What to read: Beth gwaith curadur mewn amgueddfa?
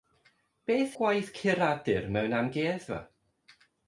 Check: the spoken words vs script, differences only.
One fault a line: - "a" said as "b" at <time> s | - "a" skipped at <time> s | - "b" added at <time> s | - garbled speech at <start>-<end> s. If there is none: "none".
none